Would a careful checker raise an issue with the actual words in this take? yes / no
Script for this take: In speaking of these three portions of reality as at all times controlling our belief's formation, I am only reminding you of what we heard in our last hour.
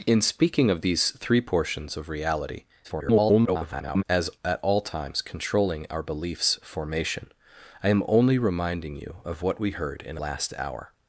yes